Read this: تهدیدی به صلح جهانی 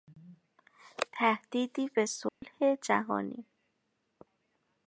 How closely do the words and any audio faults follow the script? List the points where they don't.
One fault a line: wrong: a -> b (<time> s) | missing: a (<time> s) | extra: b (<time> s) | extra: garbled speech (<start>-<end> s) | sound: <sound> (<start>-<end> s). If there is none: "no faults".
sound: dropout (2.3-2.4 s)